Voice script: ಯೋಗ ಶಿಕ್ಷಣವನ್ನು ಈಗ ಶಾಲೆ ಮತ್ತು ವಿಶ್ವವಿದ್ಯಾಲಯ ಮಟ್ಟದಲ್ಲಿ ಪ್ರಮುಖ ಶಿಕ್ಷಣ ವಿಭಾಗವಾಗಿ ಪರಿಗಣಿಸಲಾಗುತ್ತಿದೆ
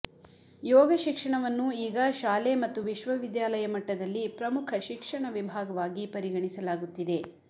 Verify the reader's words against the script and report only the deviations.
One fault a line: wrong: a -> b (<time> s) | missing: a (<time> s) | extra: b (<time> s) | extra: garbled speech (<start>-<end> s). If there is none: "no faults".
no faults